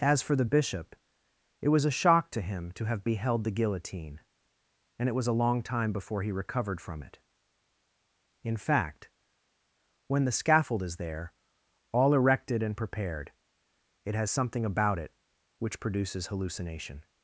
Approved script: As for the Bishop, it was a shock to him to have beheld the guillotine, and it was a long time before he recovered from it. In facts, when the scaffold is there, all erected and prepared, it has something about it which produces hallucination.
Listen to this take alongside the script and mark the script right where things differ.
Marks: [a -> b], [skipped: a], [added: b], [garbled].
As for the Bishop, it was a shock to him to have beheld the guillotine, and it was a long time before he recovered from it. In [facts, -> fact] when the scaffold is there, all erected and prepared, it has something about it which produces hallucination.